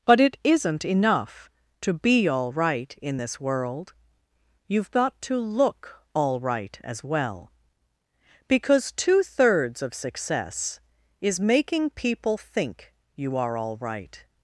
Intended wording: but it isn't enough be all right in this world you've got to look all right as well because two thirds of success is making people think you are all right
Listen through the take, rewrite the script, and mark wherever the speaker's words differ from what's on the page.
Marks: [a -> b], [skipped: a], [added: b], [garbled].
but it isn't enough [added: to] be all right in this world you've got to look all right as well because two thirds of success is making people think you are all right